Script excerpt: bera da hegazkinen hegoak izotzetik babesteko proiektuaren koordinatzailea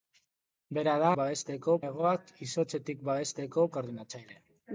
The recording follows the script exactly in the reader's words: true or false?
false